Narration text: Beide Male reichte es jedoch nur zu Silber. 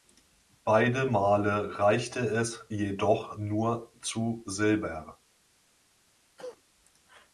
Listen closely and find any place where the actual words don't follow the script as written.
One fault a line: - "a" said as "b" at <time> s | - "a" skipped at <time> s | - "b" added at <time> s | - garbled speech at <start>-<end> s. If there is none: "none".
none